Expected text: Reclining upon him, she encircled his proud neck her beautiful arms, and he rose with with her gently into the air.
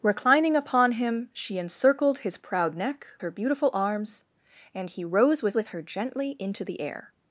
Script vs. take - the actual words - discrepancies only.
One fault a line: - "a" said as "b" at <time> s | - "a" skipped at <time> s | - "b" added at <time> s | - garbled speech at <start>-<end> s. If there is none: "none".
none